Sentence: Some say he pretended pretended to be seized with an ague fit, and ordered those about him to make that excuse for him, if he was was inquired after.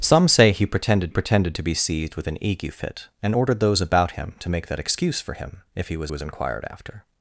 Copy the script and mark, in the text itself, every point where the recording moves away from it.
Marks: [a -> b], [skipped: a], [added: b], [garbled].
Some say he pretended pretended to be seized with an ague fit, and ordered those about him to make that excuse for him, if he was was inquired after.